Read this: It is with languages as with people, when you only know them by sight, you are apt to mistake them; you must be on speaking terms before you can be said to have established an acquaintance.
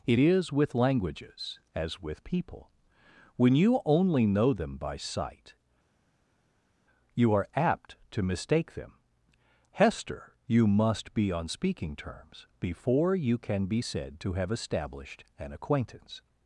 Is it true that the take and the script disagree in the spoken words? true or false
true